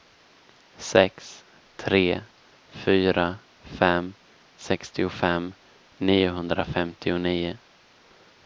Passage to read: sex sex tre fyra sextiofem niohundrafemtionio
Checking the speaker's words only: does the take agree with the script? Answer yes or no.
no